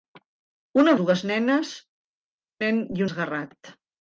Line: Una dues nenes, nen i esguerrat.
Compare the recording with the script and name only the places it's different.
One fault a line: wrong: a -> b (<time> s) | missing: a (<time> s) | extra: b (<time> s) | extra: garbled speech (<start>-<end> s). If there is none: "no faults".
no faults